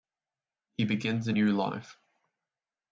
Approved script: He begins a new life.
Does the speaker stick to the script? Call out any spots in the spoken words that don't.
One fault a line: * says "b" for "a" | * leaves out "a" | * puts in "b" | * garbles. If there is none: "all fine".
all fine